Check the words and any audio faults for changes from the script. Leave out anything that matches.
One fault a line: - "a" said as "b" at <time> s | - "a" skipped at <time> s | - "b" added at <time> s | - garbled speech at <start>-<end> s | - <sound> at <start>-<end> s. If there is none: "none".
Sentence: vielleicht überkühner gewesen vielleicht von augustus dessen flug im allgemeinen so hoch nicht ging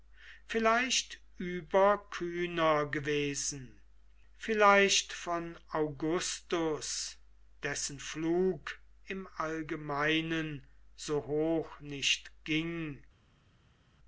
none